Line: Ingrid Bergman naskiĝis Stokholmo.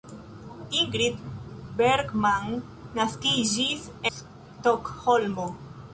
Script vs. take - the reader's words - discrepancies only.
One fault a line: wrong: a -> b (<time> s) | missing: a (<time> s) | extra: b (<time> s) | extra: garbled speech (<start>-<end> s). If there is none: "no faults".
no faults